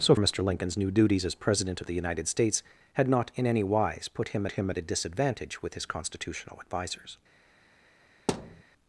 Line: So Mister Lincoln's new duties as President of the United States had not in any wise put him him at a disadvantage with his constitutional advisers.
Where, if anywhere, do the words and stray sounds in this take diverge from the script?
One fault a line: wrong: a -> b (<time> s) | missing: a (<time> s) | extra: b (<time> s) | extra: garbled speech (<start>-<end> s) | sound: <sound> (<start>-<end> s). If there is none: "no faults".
sound: thud (8.3-8.6 s)